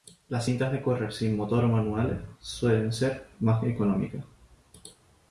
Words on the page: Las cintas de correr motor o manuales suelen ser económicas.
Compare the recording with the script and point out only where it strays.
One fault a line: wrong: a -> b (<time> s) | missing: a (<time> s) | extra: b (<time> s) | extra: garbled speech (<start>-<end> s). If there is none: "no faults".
extra: sin (1.1 s)
extra: más (3.4 s)